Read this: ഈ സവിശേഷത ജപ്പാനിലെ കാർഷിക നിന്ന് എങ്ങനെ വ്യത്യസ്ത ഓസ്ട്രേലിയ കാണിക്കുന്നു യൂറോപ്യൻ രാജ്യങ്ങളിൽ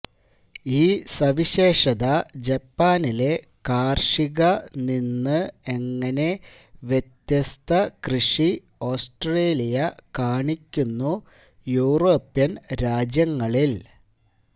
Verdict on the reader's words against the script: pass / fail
fail